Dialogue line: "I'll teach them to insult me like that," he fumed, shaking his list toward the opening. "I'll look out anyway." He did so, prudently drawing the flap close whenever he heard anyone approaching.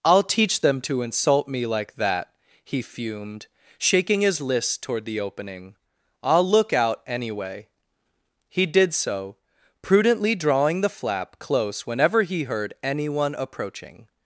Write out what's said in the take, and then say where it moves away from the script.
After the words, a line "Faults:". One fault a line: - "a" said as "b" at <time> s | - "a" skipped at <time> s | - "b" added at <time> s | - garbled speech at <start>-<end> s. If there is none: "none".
"I'll teach them to insult me like that," he fumed, shaking his list toward the opening. "I'll look out anyway." He did so, prudently drawing the flap close whenever he heard anyone approaching.
Faults:
none